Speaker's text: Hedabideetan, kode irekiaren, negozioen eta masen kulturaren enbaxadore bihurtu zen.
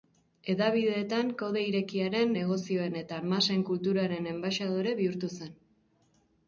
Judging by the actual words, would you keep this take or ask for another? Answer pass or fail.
pass